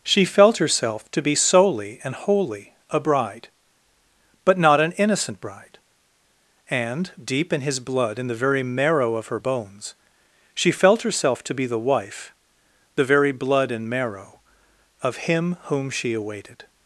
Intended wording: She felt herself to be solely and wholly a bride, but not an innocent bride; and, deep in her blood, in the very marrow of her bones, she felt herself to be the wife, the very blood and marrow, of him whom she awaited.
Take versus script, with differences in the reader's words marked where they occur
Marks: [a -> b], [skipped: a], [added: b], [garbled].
She felt herself to be solely and wholly a bride, but not an innocent bride; and, deep in [her -> his] blood, in the very marrow of her bones, she felt herself to be the wife, the very blood and marrow, of him whom she awaited.